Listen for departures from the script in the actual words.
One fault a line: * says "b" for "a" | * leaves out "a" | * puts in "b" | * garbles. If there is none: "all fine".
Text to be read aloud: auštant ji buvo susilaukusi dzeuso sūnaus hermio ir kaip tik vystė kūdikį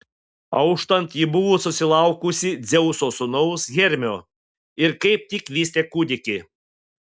all fine